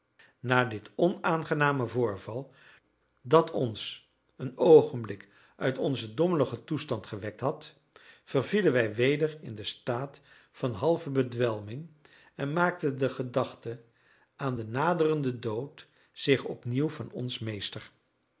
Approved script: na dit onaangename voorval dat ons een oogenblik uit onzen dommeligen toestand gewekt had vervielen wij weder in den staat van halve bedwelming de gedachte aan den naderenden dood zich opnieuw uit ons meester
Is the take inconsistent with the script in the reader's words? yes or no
yes